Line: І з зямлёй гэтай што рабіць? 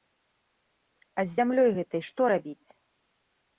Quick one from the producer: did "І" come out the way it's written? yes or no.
no